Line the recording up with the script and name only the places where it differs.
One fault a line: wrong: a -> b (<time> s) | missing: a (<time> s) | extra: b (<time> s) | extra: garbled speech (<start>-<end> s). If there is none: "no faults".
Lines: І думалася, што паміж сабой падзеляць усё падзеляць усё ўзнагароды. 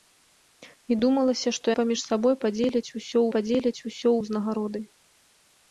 no faults